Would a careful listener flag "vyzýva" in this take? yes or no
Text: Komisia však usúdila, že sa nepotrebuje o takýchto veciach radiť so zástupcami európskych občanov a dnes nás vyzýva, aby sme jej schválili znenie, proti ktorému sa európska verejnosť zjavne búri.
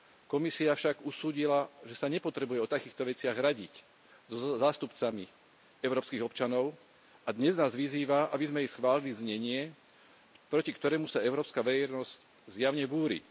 no